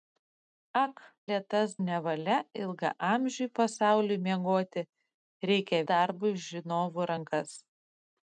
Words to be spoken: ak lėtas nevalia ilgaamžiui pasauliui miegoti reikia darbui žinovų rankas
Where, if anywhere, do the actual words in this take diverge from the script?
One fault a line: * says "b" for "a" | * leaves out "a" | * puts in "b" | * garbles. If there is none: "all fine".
all fine